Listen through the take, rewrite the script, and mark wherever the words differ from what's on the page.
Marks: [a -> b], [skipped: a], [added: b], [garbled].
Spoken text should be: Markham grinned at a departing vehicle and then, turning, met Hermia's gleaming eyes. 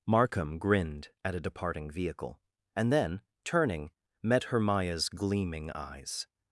Markham grinned at a departing vehicle and then, turning, met Hermia's gleaming eyes.